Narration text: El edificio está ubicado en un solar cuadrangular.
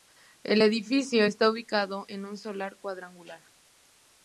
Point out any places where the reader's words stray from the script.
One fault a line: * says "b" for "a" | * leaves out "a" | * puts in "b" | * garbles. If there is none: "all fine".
all fine